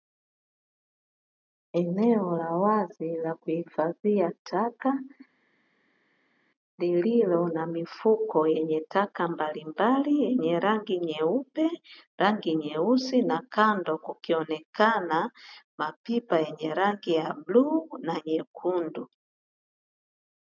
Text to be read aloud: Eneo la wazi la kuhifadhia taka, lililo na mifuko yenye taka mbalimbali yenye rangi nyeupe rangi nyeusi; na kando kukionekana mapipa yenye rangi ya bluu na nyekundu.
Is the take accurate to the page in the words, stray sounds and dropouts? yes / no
yes